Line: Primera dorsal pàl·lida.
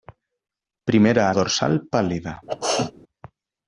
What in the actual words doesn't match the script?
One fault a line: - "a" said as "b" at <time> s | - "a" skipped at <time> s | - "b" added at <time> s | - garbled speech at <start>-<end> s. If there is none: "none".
none